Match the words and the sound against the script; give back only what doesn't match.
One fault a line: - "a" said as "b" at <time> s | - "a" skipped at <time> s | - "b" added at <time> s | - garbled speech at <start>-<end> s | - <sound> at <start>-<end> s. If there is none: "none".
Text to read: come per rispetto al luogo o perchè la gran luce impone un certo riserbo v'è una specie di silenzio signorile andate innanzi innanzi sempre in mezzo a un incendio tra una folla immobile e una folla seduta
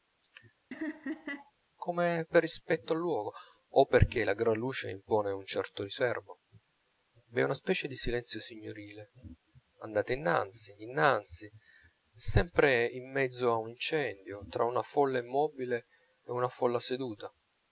- laugh at 0.7-1.5 s